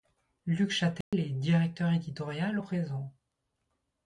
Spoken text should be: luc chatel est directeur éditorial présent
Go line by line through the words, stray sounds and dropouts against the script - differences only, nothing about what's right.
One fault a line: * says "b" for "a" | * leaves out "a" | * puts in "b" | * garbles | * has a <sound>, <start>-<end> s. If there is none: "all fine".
* has a dropout, 1.0-1.1 s